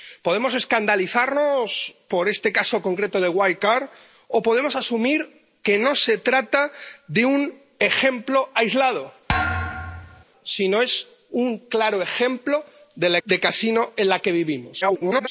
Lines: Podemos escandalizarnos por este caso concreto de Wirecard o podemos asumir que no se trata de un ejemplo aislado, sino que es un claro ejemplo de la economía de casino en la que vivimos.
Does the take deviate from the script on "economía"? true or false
true